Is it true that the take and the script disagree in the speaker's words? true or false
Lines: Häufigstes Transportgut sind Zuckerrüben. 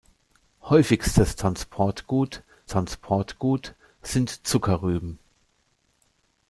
true